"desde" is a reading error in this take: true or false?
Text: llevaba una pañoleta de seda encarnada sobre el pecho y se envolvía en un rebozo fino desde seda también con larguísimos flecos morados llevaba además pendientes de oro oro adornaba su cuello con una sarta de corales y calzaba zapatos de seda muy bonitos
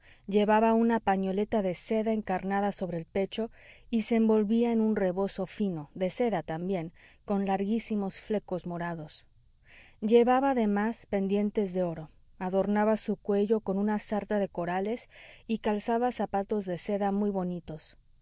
true